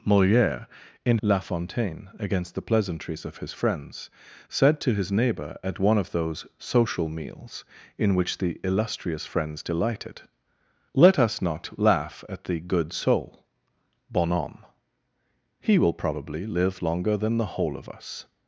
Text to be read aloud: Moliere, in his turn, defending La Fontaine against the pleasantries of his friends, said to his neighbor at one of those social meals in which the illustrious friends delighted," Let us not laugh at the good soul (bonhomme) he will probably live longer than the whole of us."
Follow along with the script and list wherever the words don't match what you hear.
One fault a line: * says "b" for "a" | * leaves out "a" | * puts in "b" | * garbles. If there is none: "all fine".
* leaves out "his turn defending"